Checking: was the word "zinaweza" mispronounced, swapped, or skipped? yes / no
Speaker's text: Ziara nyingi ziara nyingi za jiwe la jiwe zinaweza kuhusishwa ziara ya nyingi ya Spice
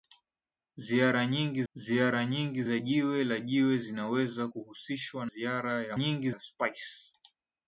no